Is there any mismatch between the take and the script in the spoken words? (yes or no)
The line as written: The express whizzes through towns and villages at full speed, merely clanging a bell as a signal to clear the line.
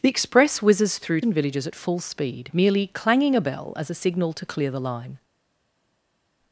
yes